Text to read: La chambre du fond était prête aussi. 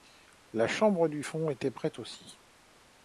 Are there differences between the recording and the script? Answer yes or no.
no